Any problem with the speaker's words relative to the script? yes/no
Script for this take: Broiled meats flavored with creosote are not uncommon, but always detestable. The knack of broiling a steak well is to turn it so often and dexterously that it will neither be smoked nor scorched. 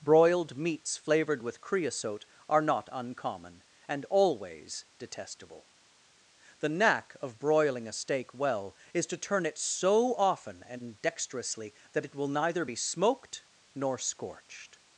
yes